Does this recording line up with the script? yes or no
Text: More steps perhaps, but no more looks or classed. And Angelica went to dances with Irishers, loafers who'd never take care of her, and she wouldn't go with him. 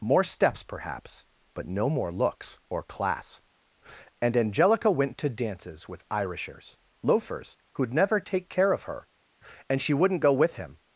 no